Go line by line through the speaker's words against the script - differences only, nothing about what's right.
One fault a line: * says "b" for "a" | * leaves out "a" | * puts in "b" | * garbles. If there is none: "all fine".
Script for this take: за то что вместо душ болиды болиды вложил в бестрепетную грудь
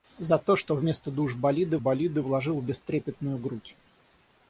all fine